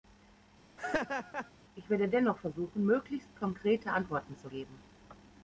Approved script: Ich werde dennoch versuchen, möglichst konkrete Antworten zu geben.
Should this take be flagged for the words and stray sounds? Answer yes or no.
yes